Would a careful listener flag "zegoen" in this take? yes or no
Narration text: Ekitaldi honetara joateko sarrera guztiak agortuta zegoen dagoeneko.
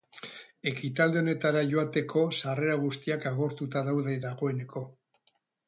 yes